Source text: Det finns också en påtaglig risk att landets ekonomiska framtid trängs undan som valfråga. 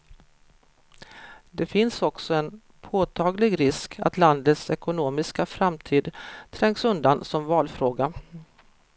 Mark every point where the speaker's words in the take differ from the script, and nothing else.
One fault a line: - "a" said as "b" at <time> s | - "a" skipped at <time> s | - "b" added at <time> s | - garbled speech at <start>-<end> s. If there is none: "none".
none